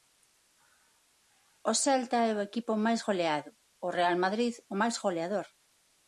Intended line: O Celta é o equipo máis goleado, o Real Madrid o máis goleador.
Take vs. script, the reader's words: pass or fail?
pass